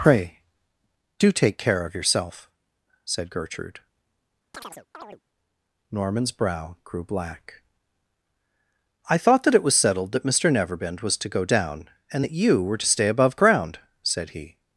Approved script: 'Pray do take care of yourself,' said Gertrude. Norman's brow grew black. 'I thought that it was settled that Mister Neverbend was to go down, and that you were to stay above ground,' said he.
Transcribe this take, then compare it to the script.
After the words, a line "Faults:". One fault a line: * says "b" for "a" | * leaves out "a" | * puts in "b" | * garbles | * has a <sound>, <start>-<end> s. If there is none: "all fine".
'Pray do take care of yourself,' said Gertrude. Norman's brow grew black. 'I thought that it was settled that Mister Neverbend was to go down, and that you were to stay above ground,' said he.
Faults:
* has a chirp, 4.5-5.2 s